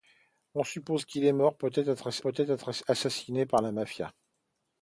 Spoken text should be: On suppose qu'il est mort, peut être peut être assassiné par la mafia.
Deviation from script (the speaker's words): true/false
false